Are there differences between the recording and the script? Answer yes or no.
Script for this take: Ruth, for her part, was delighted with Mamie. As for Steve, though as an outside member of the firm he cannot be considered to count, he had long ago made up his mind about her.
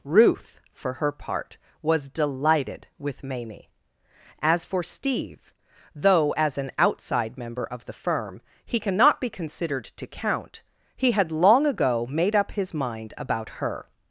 no